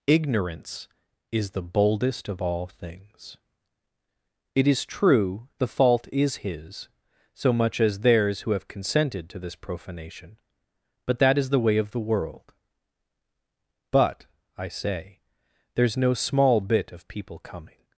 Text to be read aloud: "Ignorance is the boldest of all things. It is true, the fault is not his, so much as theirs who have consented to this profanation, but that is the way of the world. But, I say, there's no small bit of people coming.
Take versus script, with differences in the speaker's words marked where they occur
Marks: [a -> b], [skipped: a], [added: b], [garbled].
"Ignorance is the boldest of all things. It is true, the fault is [skipped: not] his, so much as theirs who have consented to this profanation, but that is the way of the world. But, I say, there's no small bit of people coming.